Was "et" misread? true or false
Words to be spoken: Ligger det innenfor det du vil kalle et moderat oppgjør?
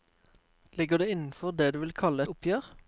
true